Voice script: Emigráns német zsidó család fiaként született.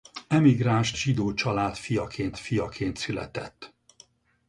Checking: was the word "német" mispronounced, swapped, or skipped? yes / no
yes